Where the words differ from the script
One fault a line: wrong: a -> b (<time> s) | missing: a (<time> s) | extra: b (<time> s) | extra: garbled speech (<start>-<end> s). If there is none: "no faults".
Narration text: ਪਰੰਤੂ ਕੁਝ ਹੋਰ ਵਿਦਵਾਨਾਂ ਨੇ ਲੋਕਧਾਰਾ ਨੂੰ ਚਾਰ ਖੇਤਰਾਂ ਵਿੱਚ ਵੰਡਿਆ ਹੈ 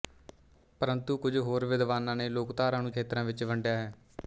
missing: ਚਾਰ (2.9 s)